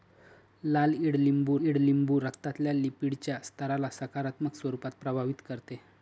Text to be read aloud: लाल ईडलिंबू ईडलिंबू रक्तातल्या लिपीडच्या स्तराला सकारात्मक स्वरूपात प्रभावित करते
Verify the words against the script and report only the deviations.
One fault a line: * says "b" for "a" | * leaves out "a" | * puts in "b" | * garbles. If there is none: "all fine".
all fine